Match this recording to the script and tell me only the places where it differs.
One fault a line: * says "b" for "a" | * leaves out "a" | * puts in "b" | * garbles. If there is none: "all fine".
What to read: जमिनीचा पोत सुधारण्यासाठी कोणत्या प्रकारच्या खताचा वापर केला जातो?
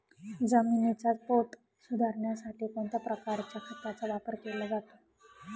all fine